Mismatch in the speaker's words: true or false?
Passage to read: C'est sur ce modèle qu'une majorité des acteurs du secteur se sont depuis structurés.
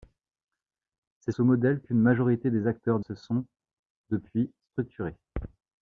true